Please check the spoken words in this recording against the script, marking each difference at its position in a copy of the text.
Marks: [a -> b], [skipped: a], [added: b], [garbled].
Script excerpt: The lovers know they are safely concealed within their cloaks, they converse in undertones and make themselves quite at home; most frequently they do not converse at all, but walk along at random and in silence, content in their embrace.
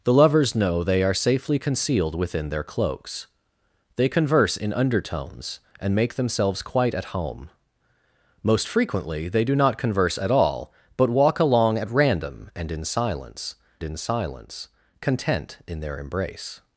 The lovers know they are safely concealed within their cloaks, they converse in undertones and make themselves quite at home; most frequently they do not converse at all, but walk along at random and in silence, [added: in silence] content in their embrace.